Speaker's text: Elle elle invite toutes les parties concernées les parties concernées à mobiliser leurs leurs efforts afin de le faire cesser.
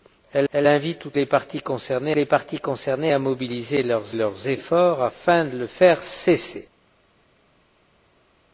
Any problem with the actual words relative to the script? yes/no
no